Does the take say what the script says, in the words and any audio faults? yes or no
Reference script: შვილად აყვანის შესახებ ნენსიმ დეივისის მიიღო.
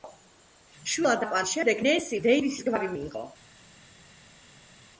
no